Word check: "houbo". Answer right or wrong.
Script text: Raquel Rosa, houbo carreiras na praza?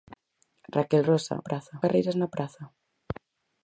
wrong